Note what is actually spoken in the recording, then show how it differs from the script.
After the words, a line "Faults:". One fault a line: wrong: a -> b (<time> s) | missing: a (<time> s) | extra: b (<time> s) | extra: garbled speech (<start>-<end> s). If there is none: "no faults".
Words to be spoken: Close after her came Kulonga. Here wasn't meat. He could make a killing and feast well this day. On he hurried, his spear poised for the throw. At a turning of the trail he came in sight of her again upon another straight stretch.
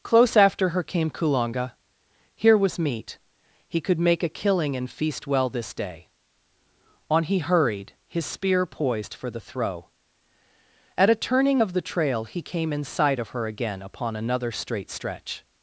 Close after her came Kulonga. Here was meat. He could make a killing and feast well this day. On he hurried, his spear poised for the throw. At a turning of the trail he came in sight of her again upon another straight stretch.
Faults:
wrong: wasn't -> was (2.6 s)